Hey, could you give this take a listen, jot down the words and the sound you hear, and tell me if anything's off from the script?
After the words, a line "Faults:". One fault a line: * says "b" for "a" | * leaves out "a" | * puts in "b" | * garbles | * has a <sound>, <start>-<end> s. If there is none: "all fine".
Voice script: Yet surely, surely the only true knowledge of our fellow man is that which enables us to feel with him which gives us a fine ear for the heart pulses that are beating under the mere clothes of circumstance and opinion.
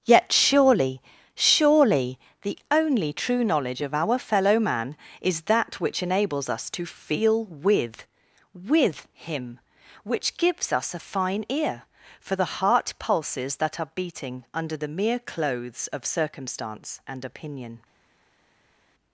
Yet surely, surely the only true knowledge of our fellow man is that which enables us to feel with with him which gives us a fine ear for the heart pulses that are beating under the mere clothes of circumstance and opinion.
Faults:
* puts in "with"